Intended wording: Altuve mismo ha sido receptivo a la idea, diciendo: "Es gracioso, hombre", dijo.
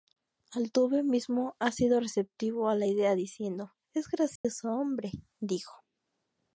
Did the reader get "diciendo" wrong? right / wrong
right